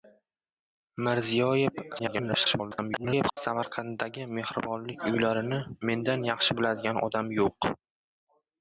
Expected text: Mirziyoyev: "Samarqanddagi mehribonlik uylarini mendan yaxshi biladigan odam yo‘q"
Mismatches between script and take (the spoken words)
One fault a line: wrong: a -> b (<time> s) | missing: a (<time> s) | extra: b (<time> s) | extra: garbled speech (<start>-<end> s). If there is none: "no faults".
extra: garbled speech (2.0-3.4 s)